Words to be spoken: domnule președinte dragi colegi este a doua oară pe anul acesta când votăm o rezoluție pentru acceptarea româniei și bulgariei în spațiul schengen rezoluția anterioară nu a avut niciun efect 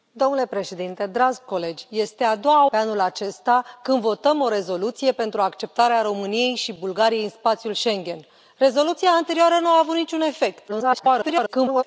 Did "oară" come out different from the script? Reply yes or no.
yes